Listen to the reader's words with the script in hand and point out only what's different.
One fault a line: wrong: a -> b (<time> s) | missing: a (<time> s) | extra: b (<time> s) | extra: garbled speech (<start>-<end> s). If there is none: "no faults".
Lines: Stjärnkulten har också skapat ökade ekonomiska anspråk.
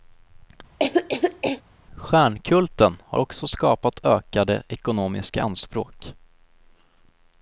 no faults